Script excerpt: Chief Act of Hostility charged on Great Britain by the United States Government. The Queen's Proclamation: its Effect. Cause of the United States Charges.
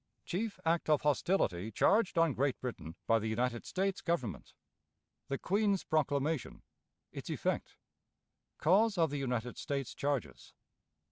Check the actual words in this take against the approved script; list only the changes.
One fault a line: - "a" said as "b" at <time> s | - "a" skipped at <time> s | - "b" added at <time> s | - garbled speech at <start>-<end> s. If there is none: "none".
none